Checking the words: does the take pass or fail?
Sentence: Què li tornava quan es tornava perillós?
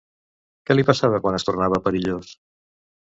fail